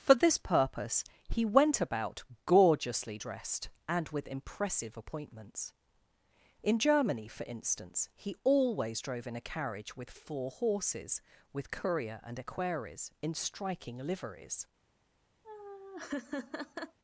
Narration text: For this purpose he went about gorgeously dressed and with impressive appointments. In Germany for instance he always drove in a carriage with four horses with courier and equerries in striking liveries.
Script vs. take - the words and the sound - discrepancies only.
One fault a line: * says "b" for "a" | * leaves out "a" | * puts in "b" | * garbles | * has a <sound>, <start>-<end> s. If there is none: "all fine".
* has a laugh, 15.4-17.0 s